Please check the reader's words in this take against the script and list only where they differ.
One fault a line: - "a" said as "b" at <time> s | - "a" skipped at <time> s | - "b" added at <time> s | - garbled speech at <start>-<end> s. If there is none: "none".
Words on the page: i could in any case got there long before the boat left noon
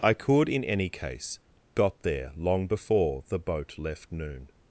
none